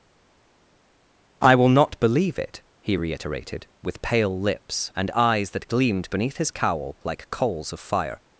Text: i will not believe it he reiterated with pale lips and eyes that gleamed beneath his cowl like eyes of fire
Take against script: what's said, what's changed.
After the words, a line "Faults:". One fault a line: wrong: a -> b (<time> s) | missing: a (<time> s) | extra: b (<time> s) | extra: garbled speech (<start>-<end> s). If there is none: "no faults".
i will not believe it he reiterated with pale lips and eyes that gleamed beneath his cowl like coals of fire
Faults:
wrong: eyes -> coals (7.3 s)